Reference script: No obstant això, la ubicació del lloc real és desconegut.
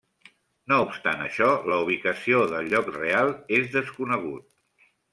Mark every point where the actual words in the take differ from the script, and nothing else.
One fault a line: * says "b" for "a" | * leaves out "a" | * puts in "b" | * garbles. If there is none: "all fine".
all fine